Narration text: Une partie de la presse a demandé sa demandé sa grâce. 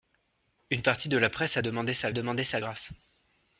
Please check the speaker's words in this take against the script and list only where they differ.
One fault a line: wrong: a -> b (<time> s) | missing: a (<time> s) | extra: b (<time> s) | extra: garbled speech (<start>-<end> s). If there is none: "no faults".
no faults